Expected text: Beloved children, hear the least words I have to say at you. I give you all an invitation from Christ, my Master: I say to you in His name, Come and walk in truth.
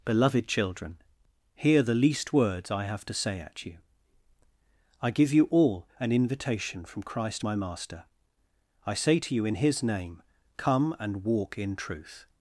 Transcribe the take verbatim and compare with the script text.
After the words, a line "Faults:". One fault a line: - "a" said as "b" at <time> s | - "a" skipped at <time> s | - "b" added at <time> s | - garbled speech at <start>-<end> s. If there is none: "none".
Beloved children, hear the least words I have to say at you. I give you all an invitation from Christ, my Master: I say to you in His name, Come and walk in truth.
Faults:
none